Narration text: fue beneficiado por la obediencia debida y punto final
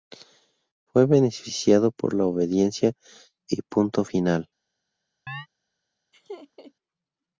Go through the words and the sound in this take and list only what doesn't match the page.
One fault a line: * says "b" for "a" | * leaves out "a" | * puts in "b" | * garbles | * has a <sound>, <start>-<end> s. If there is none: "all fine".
* leaves out "debida"
* has a chirp, 5.3-5.5 s
* has a laugh, 6.1-6.7 s